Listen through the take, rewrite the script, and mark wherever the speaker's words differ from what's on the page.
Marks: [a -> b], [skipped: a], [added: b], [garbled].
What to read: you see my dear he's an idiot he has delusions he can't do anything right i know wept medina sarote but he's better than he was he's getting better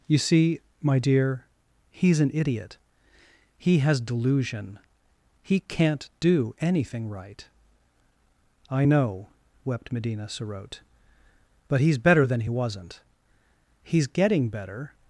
you see my dear he's an idiot he has [delusions -> delusion] he can't do anything right i know wept medina sarote but he's better than he [was -> wasn't] he's getting better